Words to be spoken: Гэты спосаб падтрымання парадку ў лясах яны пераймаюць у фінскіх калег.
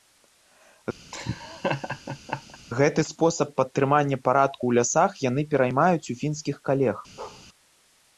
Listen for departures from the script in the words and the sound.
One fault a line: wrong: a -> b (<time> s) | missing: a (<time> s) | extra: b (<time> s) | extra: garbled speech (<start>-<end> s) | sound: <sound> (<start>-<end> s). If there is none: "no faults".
sound: laugh (1.1-2.6 s)
sound: bark (7.2-7.5 s)